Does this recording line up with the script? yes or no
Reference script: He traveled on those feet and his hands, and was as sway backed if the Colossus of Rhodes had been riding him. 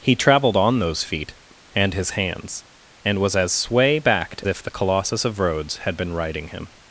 yes